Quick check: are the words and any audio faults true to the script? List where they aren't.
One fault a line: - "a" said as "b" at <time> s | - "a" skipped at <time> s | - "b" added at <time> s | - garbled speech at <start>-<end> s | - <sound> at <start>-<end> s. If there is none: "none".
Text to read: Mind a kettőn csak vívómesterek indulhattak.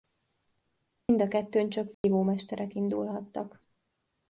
- dropout at 1.0-1.1 s
- dropout at 1.9-2.0 s